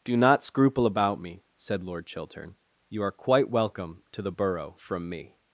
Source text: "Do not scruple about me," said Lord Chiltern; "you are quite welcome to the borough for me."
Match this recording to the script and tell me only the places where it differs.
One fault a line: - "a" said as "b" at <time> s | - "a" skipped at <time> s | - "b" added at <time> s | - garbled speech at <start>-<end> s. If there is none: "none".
- "for" said as "from" at 4.8 s